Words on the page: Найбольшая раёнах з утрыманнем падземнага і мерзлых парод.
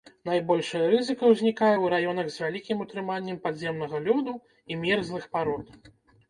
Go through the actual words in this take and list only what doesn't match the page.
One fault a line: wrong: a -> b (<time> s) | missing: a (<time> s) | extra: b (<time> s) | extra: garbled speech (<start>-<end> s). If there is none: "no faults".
extra: рызыка ўзнікае ў (0.9 s)
extra: вялікім (2.4 s)
extra: лёду (4.1 s)